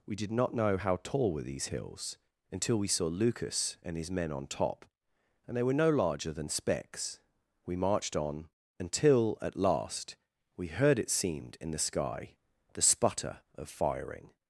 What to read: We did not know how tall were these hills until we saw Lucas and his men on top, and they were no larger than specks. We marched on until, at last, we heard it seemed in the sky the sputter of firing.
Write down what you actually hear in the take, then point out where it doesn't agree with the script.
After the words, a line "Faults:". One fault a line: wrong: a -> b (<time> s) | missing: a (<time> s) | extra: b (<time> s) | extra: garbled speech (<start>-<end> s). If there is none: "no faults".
We did not know how tall were these hills until we saw Lucas and his men on top, and they were no larger than specks. We marched on until, at last, we heard it seemed in the sky the sputter of firing.
Faults:
no faults